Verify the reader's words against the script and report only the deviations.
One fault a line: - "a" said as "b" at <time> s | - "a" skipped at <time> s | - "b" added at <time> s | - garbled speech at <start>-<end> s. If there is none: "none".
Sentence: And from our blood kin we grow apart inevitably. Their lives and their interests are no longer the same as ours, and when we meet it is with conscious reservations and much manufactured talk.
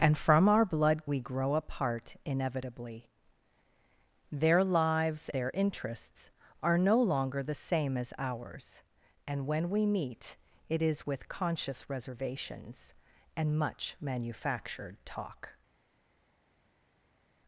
- "kin" skipped at 1.1 s
- "and" skipped at 5.3 s